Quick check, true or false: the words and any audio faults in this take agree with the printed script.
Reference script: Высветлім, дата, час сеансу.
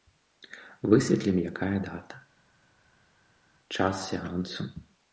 false